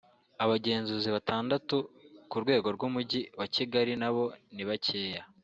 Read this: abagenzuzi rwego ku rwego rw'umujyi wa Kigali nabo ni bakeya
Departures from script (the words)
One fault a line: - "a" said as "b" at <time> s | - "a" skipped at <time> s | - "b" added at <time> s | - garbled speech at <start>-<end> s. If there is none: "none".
- "rwego" said as "batandatu" at 1.1 s